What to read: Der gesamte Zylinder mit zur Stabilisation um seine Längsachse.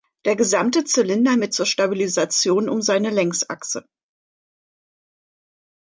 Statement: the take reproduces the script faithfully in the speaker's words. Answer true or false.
true